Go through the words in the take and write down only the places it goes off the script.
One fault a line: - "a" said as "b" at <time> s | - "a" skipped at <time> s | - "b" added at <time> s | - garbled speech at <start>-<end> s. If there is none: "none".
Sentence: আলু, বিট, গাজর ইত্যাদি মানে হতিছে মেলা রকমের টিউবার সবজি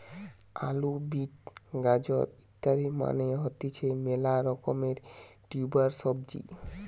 none